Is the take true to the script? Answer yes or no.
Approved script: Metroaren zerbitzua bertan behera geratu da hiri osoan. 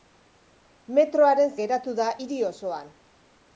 no